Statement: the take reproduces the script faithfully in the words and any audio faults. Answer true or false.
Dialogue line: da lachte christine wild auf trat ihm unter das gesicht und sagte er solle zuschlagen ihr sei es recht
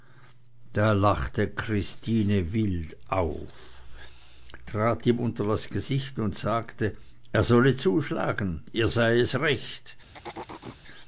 false